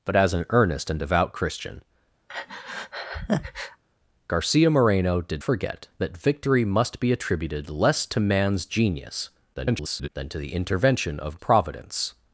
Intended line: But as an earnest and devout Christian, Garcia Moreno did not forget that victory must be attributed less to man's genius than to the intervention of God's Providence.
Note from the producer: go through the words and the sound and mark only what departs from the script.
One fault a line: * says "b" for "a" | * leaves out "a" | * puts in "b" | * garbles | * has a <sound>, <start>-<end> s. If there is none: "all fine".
* has a breath, 2.3-3.8 s
* leaves out "not"
* garbles
* leaves out "God's"